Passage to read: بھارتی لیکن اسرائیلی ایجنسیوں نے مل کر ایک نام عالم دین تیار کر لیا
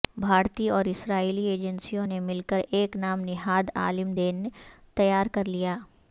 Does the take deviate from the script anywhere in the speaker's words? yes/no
yes